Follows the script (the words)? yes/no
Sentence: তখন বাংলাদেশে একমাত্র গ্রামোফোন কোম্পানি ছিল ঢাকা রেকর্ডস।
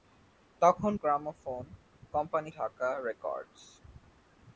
no